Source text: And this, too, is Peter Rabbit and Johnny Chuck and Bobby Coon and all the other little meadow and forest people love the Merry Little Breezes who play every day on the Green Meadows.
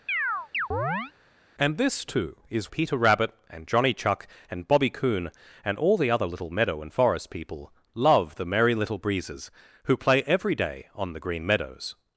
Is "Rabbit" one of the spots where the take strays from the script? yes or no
no